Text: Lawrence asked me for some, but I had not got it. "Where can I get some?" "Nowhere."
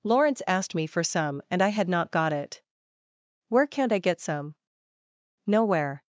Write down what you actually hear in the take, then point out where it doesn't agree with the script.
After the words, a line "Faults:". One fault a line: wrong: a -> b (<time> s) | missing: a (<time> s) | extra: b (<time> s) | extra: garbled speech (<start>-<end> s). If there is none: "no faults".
Lawrence asked me for some, and I had not got it. "Where can't I get some?" "Nowhere."
Faults:
wrong: but -> and (1.5 s)
wrong: can -> can't (3.7 s)